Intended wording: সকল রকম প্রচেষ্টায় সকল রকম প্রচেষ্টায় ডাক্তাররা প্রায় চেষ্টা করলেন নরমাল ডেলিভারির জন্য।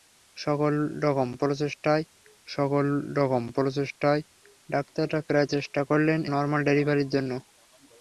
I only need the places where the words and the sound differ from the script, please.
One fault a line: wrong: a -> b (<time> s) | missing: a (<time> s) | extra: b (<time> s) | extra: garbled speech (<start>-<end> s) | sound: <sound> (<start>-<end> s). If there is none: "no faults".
no faults